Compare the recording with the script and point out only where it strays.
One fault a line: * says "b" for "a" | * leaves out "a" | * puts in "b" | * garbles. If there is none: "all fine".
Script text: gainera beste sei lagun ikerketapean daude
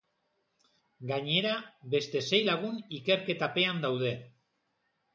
all fine